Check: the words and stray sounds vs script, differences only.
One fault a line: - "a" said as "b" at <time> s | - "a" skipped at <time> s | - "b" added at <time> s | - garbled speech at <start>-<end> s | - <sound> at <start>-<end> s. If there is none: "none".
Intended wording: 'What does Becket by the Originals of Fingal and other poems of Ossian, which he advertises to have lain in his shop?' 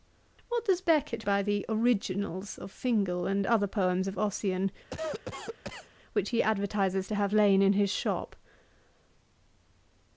- cough at 4.9-5.9 s